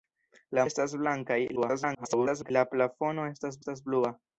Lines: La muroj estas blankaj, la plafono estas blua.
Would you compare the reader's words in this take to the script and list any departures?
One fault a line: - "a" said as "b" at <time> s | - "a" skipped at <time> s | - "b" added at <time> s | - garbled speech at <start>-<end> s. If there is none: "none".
- "muroj" skipped at 0.6 s
- garbled speech at 1.6-2.5 s
- "estas" added at 3.6 s